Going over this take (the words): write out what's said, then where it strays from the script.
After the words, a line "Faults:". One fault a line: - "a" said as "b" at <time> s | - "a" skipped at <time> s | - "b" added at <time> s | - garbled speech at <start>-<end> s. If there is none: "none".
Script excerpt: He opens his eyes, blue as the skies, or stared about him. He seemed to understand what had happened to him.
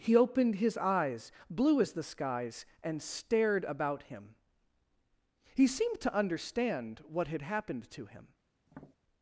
He opened his eyes, blue as the skies, and stared about him. He seemed to understand what had happened to him.
Faults:
- "opens" said as "opened" at 0.1 s
- "or" said as "and" at 2.8 s